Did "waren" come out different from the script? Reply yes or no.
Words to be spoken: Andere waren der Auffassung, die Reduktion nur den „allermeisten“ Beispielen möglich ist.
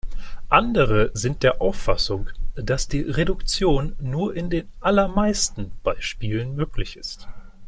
yes